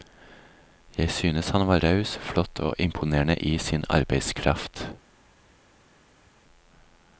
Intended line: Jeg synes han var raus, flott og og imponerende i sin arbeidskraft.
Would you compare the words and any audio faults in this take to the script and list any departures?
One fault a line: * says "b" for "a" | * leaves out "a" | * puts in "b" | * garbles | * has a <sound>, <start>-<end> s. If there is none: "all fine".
* leaves out "og"